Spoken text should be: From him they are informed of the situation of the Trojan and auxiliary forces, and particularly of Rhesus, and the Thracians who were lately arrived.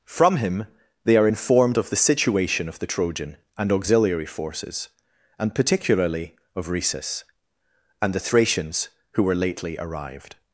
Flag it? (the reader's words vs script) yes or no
no